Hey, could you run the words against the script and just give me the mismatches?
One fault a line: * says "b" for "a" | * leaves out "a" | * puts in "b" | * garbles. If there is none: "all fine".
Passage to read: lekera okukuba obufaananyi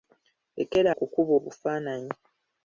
all fine